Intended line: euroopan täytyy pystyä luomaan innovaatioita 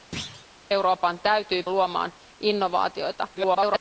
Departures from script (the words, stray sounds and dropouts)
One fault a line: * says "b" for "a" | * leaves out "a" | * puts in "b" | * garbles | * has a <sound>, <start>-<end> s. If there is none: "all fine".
* has a thud, 0.1-0.5 s
* leaves out "pystyä"
* garbles